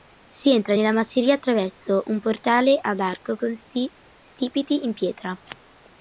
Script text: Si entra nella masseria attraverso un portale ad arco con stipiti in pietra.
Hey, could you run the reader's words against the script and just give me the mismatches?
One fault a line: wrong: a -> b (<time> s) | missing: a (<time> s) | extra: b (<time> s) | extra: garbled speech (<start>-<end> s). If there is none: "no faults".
no faults